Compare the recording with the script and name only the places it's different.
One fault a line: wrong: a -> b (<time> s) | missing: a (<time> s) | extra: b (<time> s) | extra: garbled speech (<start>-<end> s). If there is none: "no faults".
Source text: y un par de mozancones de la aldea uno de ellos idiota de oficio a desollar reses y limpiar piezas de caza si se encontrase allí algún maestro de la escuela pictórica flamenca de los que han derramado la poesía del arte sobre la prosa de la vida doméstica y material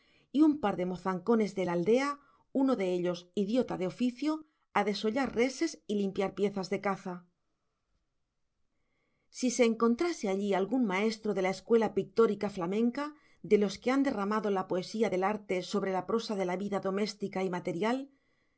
no faults